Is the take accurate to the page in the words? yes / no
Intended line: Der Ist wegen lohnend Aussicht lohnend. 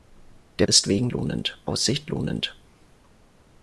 yes